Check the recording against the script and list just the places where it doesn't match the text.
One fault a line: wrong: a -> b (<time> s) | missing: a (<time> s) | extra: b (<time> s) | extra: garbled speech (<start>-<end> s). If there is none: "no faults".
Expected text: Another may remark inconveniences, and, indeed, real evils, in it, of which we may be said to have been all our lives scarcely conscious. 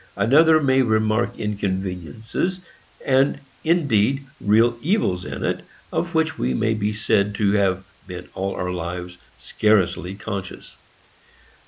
no faults